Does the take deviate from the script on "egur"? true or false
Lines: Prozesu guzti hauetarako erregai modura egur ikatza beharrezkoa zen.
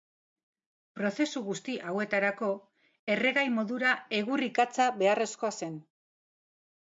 false